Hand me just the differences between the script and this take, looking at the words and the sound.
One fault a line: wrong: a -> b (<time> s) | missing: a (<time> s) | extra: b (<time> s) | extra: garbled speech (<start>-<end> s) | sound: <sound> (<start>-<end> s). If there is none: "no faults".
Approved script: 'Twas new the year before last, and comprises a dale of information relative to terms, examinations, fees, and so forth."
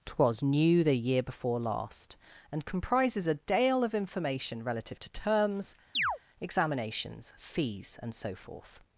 sound: chirp (5.9-6.2 s)